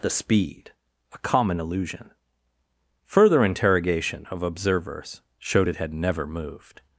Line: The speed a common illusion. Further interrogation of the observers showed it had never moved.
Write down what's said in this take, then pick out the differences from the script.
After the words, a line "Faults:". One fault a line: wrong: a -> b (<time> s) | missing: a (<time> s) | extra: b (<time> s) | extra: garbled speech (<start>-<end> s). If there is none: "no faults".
The speed a common illusion. Further interrogation of observers showed it had never moved.
Faults:
missing: the (4.4 s)